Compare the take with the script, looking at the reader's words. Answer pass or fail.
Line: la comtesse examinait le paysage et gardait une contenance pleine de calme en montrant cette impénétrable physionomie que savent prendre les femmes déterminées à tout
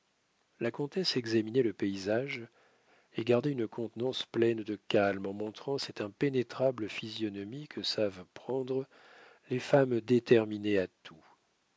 pass